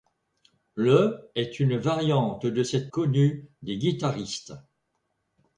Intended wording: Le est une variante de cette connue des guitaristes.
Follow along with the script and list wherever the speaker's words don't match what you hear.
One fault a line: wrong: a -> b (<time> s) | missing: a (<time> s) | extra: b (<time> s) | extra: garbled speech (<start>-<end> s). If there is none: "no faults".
no faults